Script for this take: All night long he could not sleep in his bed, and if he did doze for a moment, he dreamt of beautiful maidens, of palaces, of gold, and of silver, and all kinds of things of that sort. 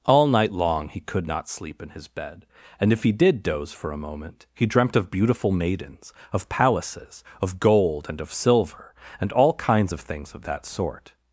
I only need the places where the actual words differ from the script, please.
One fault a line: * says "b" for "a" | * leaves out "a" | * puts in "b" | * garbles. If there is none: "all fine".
all fine